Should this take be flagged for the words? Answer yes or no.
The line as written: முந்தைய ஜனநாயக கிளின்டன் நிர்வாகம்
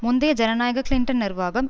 no